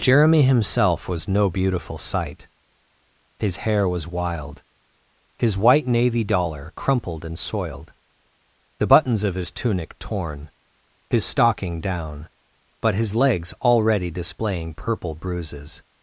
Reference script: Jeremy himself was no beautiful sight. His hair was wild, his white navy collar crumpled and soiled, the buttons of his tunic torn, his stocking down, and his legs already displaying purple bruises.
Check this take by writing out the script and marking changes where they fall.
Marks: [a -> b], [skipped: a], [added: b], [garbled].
Jeremy himself was no beautiful sight. His hair was wild, his white navy [collar -> dollar] crumpled and soiled, the buttons of his tunic torn, his stocking down, [and -> but] his legs already displaying purple bruises.